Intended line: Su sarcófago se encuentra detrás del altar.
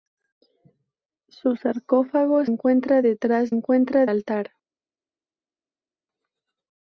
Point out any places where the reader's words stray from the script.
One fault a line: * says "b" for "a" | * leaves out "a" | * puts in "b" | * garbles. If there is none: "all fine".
* leaves out "se"
* says "encuentra" for "del"